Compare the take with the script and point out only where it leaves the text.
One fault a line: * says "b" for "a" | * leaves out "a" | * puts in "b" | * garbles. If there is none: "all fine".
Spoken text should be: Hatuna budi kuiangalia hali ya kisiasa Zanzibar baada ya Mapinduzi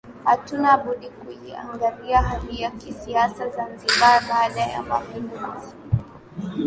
all fine